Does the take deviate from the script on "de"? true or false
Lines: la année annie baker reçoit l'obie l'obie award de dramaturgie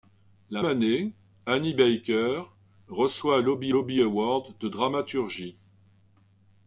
false